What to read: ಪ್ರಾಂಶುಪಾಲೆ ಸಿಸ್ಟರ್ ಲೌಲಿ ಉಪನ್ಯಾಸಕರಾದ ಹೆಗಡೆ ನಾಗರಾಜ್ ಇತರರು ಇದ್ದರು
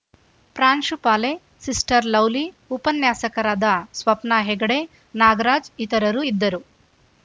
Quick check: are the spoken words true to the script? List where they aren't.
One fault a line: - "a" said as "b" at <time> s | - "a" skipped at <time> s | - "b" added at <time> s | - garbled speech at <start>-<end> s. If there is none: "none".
- "ಸ್ವಪ್ನ" added at 3.9 s